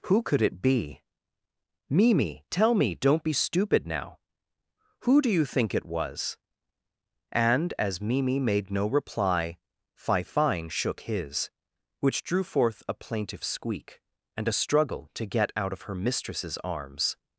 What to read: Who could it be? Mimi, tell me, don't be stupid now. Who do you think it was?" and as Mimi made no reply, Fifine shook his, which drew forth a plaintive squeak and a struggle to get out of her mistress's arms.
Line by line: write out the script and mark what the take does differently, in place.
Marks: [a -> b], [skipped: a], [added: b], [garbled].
Who could it be? Mimi, tell me, don't be stupid now. Who do you think it was?" and as Mimi made no reply, Fifine shook his, which drew forth a plaintive squeak and a struggle to get out of her mistress's arms.